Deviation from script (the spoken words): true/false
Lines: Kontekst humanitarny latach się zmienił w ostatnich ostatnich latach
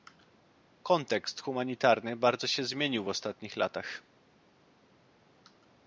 true